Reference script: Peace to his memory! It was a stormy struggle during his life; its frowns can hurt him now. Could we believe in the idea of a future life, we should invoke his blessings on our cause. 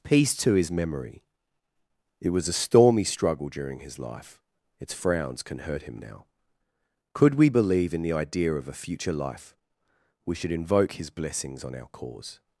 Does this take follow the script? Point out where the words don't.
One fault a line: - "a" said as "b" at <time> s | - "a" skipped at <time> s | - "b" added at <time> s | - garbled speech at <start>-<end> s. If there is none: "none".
none